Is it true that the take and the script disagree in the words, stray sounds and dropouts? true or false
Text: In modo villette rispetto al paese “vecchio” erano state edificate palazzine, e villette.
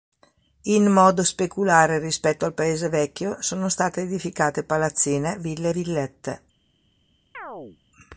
true